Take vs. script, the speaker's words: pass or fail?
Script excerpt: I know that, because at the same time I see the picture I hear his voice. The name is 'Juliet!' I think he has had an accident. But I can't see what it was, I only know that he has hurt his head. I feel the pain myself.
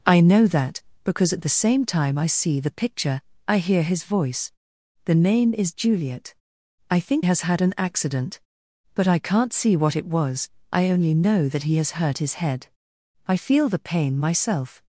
fail